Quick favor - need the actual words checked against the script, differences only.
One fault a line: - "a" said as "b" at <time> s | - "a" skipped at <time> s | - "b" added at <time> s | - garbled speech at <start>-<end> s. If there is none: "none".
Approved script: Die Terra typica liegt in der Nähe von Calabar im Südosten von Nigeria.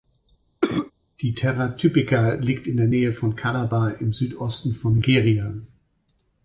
none